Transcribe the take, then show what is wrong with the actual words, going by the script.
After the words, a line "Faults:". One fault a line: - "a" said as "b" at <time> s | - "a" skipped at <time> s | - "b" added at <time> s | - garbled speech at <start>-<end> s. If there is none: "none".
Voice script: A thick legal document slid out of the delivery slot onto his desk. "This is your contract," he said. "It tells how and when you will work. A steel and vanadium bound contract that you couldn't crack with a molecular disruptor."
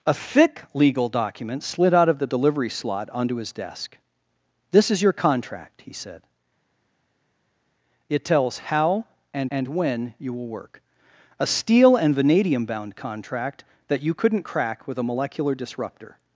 A thick legal document slid out of the delivery slot onto his desk. "This is your contract," he said. "It tells how and and when you will work. A steel and vanadium bound contract that you couldn't crack with a molecular disruptor."
Faults:
- "and" added at 9.5 s